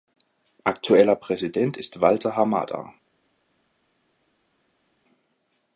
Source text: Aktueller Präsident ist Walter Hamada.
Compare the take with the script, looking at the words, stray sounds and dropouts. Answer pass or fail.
pass